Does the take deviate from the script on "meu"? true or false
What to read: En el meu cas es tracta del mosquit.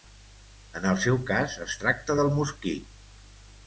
true